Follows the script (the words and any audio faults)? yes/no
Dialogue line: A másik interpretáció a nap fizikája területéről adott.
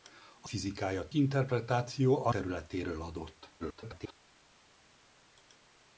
no